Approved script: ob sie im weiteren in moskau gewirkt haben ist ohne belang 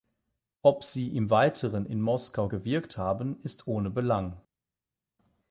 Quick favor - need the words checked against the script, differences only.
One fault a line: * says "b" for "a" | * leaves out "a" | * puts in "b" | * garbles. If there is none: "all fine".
all fine